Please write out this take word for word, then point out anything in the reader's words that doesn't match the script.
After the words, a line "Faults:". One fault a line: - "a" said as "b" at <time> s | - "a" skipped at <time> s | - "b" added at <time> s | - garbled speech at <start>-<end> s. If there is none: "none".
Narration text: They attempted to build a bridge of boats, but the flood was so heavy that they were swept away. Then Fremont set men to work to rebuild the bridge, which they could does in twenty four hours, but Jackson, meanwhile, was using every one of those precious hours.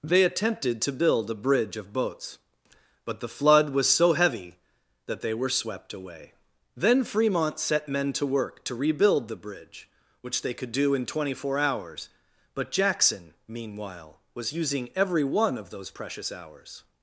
They attempted to build a bridge of boats, but the flood was so heavy that they were swept away. Then Fremont set men to work to rebuild the bridge, which they could do in twenty four hours, but Jackson, meanwhile, was using every one of those precious hours.
Faults:
- "does" said as "do" at 10.7 s